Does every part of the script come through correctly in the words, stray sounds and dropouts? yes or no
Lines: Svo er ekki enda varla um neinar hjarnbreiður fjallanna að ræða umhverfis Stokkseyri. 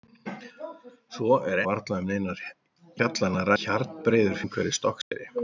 no